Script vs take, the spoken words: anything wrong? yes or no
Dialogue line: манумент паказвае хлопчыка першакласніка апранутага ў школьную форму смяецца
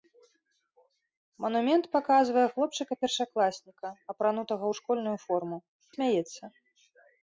no